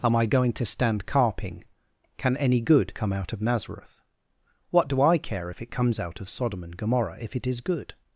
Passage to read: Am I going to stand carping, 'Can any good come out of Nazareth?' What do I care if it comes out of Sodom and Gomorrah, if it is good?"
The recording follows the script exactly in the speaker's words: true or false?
true